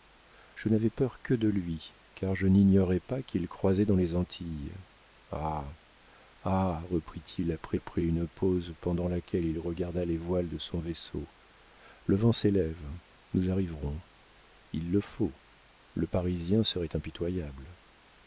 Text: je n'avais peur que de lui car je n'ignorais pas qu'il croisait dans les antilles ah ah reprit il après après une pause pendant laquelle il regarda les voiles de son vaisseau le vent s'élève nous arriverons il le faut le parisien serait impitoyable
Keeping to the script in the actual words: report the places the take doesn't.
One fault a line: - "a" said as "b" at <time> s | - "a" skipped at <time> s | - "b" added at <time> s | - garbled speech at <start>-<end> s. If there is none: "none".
none